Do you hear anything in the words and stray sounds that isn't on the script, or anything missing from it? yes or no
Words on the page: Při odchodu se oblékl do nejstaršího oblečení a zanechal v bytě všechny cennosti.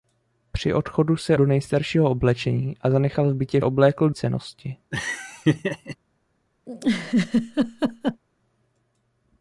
yes